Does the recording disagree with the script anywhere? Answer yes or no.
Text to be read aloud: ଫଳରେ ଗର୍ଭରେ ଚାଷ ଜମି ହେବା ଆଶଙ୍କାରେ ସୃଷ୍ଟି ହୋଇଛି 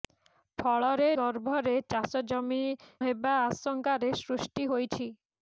no